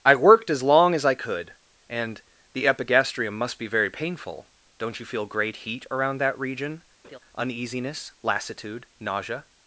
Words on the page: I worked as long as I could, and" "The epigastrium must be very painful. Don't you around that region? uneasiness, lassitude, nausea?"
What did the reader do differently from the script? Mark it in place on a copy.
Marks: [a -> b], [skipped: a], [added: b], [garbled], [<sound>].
I worked as long as I could, and" "The epigastrium must be very painful. Don't you [added: feel great heat] around that region? [laugh] uneasiness, lassitude, nausea?"